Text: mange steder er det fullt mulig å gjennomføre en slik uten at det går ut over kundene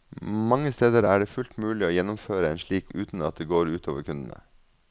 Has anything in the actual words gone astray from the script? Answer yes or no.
no